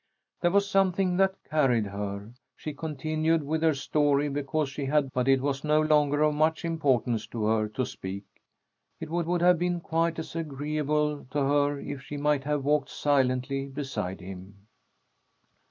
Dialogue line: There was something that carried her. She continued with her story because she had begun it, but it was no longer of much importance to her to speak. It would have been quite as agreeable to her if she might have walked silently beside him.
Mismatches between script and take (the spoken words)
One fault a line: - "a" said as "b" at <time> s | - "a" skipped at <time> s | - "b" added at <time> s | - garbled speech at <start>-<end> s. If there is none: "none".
- "begun it" skipped at 5.1 s
- "would" added at 9.2 s